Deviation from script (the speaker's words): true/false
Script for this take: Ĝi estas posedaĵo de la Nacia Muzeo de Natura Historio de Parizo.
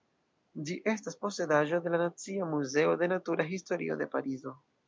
false